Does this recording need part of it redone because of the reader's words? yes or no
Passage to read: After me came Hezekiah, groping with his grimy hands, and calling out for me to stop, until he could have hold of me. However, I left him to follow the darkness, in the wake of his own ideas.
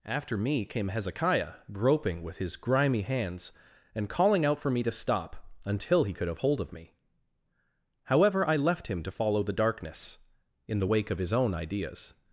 no